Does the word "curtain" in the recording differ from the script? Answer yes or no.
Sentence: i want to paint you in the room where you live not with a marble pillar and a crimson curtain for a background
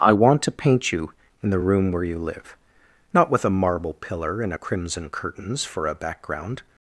yes